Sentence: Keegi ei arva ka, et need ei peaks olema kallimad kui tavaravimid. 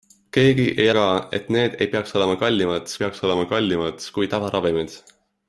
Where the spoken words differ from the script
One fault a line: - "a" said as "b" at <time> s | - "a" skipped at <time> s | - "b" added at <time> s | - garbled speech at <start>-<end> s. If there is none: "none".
- "arva" skipped at 0.9 s
- "peaks olema kallimad" added at 3.0 s